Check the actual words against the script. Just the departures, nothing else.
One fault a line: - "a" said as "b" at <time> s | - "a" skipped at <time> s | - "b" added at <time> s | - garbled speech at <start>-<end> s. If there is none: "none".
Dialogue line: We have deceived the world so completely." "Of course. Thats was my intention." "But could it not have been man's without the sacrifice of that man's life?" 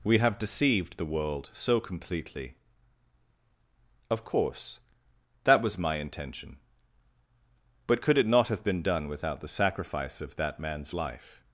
- "Thats" said as "That" at 5.4 s
- "man's" said as "done" at 8.8 s